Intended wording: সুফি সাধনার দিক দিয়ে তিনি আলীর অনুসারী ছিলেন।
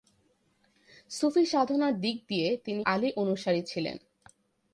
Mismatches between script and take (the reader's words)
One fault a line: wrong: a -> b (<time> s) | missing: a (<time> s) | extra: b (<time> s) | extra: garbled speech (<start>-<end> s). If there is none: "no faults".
no faults